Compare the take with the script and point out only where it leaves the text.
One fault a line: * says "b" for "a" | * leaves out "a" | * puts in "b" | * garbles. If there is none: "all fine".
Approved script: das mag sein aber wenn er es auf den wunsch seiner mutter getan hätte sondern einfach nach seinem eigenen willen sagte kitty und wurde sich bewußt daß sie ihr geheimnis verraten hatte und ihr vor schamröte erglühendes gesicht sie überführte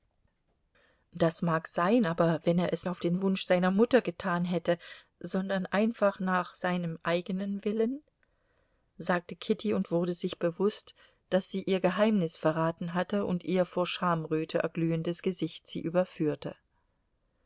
all fine